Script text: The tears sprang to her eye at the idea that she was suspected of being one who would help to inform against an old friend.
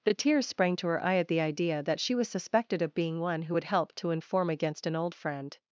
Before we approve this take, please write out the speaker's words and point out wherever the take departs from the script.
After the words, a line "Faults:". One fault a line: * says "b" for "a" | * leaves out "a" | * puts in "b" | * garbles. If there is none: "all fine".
The tears sprang to her eye at the idea that she was suspected of being one who would help to inform against an old friend.
Faults:
all fine